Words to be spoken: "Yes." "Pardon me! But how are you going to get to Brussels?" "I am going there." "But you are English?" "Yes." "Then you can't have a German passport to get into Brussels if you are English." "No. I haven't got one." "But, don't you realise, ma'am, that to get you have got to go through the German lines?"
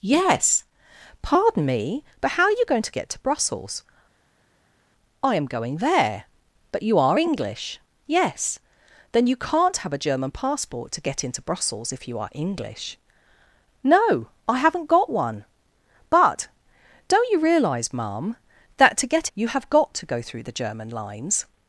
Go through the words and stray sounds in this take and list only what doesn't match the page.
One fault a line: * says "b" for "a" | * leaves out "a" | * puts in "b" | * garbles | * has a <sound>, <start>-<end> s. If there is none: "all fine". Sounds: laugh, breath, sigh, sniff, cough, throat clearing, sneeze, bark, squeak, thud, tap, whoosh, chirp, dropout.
all fine